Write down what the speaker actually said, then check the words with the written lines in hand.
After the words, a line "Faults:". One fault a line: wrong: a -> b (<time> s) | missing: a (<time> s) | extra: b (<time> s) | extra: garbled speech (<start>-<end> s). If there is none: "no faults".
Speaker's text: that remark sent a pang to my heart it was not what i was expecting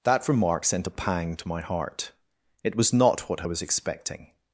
that remark sent a pang to my heart it was not what i was expecting
Faults:
no faults